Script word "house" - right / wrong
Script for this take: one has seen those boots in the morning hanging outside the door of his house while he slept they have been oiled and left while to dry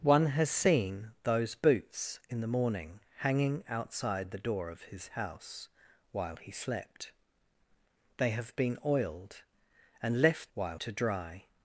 right